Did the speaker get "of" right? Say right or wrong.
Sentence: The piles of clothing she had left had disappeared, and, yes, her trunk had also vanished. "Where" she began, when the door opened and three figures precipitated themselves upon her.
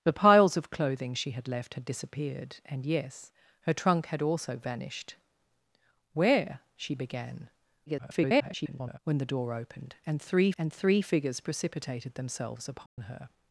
right